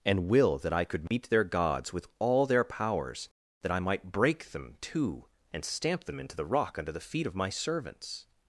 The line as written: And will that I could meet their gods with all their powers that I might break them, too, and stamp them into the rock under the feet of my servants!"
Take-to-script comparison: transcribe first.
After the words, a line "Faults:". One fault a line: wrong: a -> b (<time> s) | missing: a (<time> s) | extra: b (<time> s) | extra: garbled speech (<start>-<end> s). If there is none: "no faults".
And will that I could meet their gods with all their powers that I might break them, too, and stamp them into the rock under the feet of my servants!"
Faults:
no faults